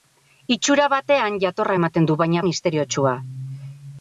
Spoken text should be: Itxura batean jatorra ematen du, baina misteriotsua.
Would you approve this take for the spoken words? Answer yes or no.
yes